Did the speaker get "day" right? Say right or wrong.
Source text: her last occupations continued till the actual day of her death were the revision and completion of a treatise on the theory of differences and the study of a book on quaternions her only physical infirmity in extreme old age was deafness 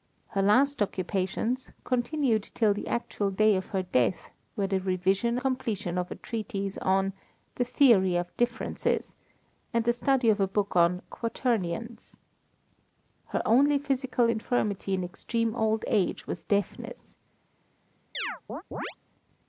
right